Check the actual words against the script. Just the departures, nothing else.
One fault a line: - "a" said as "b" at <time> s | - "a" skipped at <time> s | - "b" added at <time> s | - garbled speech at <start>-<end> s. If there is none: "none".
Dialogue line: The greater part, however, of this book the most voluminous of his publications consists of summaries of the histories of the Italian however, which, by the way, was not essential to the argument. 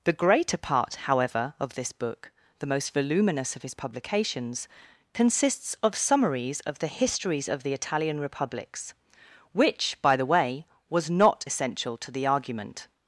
- "however" said as "republics" at 8.2 s